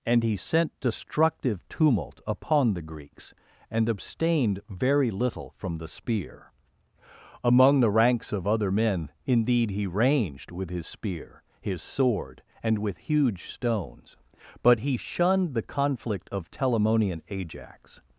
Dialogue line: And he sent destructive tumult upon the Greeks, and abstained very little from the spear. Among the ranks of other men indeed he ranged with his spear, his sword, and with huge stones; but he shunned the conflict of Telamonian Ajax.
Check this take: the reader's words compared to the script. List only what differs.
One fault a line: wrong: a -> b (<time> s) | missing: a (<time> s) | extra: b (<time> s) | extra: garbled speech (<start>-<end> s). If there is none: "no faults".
no faults